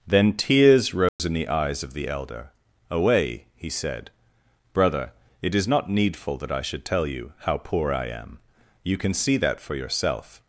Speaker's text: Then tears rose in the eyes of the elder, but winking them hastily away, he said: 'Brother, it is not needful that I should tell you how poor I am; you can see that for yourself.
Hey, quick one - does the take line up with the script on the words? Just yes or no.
no